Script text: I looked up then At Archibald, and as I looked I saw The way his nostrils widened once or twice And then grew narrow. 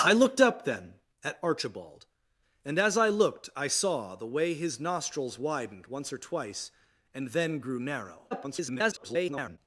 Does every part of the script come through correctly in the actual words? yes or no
no